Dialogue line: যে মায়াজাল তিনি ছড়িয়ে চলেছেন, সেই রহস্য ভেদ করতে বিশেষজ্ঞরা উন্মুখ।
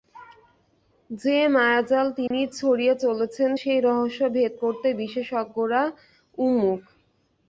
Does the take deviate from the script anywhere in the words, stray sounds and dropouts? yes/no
yes